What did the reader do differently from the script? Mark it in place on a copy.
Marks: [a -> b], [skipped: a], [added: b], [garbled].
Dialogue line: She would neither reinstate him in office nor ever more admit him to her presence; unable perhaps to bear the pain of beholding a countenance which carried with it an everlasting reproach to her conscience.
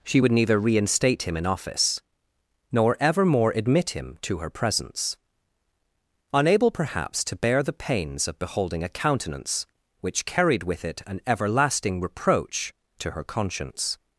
She would neither reinstate him in office nor ever more admit him to her presence; unable perhaps to bear the [pain -> pains] of beholding a countenance which carried with it an everlasting reproach to her conscience.